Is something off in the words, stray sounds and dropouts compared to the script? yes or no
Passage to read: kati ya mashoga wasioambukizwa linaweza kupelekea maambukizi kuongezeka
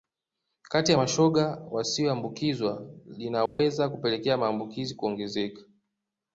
yes